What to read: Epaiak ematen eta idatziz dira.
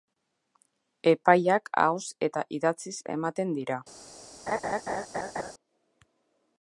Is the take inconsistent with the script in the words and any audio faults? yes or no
yes